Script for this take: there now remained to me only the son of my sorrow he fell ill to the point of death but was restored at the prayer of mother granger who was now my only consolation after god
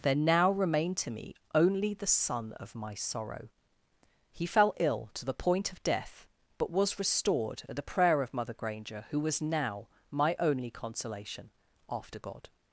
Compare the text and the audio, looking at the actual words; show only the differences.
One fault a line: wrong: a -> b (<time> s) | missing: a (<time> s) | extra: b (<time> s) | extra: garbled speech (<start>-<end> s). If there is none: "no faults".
no faults